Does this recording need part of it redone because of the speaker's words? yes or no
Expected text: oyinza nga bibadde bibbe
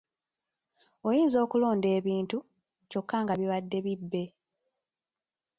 yes